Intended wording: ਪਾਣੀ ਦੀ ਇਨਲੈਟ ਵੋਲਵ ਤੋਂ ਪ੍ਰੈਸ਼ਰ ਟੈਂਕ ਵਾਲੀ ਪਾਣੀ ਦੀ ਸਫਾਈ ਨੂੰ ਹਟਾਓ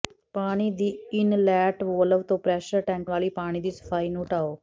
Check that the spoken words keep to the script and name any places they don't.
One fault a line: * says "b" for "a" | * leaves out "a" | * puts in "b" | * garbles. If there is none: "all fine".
all fine